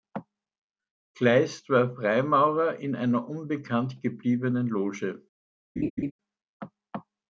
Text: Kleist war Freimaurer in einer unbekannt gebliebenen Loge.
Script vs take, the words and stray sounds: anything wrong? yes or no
yes